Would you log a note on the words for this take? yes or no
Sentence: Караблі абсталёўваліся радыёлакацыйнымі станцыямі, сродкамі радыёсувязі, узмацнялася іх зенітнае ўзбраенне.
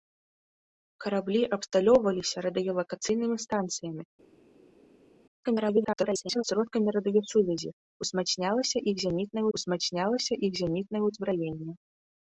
yes